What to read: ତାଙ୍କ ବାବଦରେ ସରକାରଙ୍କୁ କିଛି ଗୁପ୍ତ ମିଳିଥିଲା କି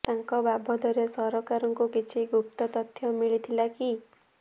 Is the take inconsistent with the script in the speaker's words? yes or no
yes